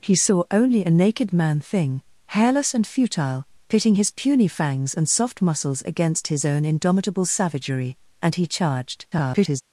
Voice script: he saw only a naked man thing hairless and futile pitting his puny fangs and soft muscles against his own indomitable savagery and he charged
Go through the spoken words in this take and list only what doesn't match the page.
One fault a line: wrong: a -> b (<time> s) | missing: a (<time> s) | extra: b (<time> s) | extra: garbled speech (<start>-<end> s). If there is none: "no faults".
extra: garbled speech (9.1-9.6 s)